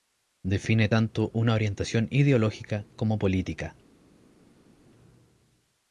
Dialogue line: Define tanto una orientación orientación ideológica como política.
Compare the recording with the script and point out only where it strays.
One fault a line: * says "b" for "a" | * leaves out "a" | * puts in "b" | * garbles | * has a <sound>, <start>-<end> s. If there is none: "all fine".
* leaves out "orientación"